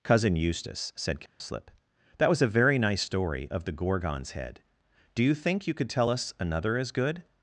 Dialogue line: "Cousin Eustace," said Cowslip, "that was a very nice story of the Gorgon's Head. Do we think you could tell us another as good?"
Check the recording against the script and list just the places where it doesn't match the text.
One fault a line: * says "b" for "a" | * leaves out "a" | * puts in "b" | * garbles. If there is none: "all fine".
* says "you" for "we"